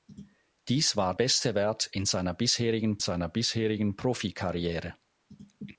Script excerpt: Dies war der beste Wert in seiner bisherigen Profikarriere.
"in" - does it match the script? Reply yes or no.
yes